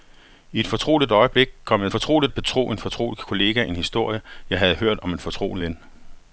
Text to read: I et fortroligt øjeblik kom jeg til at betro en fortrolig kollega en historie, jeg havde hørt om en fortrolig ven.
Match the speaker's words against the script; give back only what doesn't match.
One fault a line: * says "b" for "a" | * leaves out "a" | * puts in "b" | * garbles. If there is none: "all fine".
* says "fortroligt" for "til"